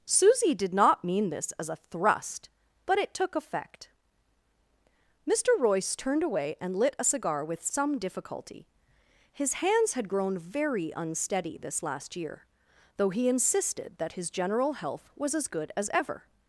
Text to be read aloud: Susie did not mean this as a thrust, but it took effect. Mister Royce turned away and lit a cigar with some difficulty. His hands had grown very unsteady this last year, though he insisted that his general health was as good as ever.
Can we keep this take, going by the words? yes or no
yes